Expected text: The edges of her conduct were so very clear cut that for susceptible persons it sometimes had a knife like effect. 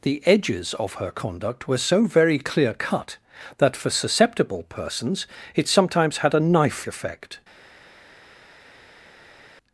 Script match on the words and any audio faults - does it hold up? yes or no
no